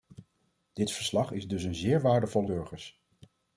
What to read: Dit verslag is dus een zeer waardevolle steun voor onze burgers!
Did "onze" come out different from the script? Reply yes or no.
yes